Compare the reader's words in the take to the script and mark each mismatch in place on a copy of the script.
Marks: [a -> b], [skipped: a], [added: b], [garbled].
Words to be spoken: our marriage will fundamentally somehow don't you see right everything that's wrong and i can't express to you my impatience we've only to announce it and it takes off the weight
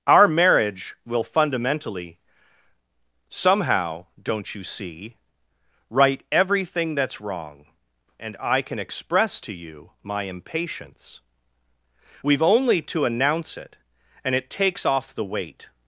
our marriage will fundamentally somehow don't you see right everything that's wrong and i [can't -> can] express to you my impatience we've only to announce it and it takes off the weight